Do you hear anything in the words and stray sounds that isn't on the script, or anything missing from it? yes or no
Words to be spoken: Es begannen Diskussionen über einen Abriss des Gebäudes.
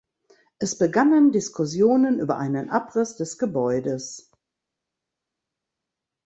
no